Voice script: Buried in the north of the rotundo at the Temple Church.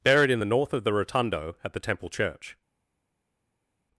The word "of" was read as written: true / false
true